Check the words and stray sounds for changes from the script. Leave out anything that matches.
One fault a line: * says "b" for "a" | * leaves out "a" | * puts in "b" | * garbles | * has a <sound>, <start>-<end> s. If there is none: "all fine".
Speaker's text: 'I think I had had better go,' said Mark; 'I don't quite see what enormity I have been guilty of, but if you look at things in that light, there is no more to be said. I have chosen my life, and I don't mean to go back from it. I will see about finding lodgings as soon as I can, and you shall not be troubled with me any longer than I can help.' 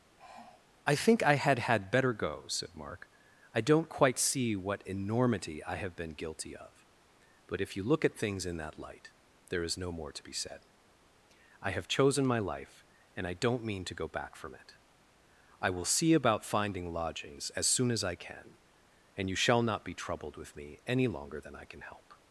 * has a sigh, 0.2-0.7 s